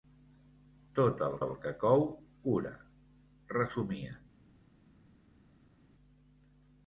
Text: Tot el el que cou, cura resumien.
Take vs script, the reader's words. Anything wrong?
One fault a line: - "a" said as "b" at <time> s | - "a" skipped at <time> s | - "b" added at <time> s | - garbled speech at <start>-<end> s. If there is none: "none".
none